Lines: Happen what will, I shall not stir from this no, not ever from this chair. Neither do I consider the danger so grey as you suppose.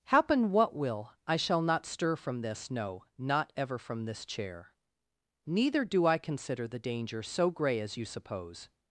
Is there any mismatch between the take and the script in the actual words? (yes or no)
no